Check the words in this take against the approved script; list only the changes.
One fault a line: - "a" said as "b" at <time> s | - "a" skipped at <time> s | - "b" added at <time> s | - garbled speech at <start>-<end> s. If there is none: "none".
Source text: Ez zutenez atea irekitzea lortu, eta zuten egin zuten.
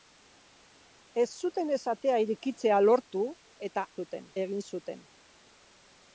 none